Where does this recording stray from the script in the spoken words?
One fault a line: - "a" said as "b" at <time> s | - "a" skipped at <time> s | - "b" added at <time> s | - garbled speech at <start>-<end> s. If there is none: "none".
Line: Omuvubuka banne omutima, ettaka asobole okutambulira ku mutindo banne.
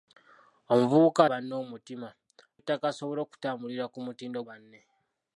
none